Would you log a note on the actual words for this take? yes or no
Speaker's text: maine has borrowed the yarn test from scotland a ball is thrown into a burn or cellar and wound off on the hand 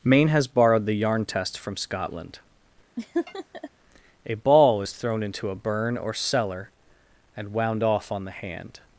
no